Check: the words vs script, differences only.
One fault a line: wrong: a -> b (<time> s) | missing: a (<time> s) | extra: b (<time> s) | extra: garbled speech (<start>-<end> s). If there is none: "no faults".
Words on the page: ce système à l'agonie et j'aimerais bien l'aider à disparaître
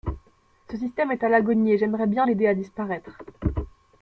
extra: est (1.1 s)